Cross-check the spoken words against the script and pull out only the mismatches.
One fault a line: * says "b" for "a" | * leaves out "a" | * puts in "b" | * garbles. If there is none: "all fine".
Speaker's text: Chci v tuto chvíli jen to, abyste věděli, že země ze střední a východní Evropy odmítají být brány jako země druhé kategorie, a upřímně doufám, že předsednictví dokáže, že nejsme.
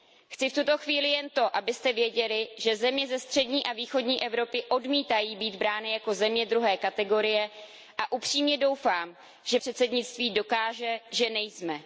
all fine